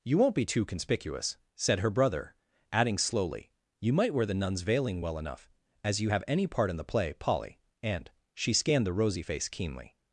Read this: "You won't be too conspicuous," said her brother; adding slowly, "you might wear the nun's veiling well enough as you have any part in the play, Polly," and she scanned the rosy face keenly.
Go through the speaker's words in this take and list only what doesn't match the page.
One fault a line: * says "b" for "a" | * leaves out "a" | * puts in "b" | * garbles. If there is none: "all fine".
all fine